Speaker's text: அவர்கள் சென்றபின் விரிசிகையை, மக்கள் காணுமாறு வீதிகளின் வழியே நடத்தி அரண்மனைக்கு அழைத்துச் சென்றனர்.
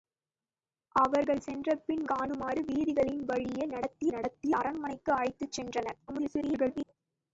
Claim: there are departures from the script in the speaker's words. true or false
true